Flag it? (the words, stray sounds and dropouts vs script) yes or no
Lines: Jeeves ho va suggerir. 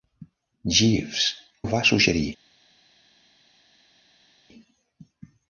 no